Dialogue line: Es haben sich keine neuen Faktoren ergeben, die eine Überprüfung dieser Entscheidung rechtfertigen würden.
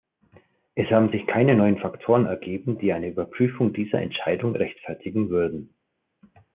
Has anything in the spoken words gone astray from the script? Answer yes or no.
no